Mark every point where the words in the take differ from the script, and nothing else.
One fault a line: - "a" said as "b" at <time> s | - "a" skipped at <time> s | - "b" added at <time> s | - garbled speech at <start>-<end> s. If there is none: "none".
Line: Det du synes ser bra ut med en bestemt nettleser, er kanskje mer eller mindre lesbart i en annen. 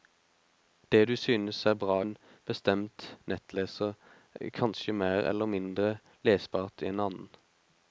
- "ut med" skipped at 2.0 s